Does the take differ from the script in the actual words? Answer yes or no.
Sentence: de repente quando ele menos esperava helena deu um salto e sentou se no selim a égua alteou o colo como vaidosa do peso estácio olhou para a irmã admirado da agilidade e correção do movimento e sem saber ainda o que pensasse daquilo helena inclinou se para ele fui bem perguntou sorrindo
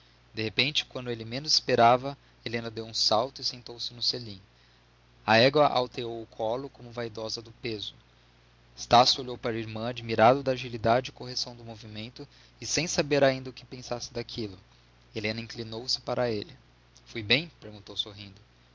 no